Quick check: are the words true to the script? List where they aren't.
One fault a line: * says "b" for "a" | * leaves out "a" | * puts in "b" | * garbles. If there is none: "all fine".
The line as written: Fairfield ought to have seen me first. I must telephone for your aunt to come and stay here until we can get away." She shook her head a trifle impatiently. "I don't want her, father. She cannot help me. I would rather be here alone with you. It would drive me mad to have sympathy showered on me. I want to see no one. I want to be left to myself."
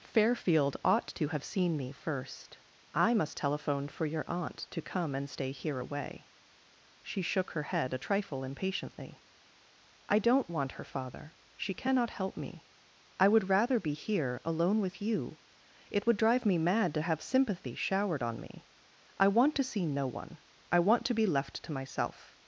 * leaves out "until we can get"